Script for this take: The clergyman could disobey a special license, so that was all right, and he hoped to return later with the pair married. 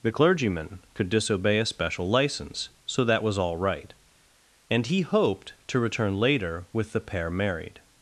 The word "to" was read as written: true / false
true